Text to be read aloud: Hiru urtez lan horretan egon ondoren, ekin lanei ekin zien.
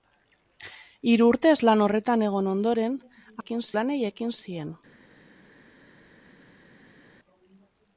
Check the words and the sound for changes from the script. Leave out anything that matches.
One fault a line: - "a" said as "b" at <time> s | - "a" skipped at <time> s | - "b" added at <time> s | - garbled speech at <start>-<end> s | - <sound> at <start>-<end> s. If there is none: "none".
none